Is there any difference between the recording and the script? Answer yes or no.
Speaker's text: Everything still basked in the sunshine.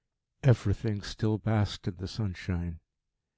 no